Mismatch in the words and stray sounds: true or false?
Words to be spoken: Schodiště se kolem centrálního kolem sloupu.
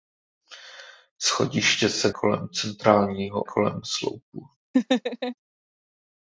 true